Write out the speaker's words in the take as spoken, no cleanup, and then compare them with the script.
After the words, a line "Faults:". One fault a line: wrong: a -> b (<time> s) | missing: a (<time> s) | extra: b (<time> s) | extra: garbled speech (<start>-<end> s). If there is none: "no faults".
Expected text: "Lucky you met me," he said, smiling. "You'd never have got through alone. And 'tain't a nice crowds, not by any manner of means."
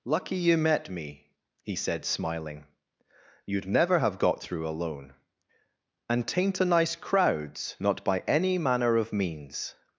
"Lucky you met me," he said, smiling. "You'd never have got through alone. And 'tain't a nice crowds, not by any manner of means."
Faults:
no faults